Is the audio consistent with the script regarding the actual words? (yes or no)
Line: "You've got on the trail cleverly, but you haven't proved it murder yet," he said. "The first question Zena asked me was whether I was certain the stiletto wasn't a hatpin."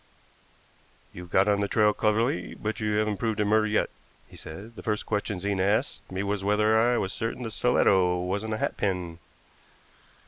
yes